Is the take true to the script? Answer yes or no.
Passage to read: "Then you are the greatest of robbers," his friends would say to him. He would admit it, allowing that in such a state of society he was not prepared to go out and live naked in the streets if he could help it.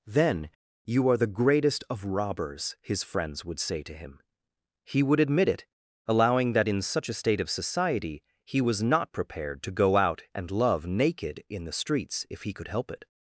no